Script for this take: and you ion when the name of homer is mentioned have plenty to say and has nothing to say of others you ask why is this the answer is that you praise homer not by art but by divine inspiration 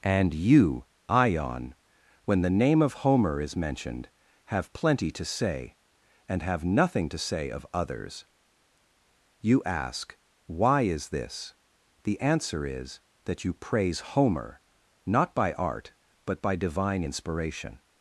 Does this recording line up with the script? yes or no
no